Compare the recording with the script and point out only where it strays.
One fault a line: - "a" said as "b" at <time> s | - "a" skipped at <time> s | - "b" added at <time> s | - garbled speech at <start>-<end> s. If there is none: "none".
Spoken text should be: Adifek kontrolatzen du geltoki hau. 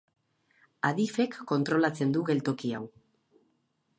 none